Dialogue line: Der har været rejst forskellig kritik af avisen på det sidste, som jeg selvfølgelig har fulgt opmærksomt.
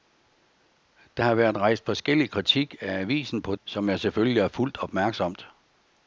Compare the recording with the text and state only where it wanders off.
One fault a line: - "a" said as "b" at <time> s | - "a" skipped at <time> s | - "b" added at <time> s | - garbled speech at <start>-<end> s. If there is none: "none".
- "det sidste" skipped at 3.5 s